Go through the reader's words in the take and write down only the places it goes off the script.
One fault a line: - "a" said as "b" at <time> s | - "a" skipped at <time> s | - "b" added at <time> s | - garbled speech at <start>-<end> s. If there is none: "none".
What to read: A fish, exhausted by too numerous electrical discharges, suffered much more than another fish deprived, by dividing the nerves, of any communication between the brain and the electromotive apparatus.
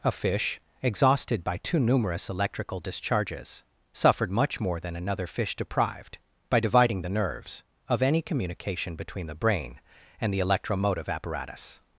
none